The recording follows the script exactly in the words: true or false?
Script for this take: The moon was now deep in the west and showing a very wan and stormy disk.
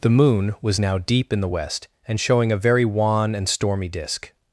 true